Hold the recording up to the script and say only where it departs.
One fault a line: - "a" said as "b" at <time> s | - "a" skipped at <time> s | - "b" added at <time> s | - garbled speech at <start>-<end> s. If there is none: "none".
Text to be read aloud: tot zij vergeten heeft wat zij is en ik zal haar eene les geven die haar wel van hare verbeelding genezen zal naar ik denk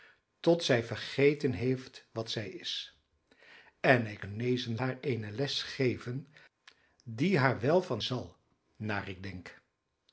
- "zal" said as "genezen" at 4.2 s
- "hare verbeelding genezen" skipped at 8.0 s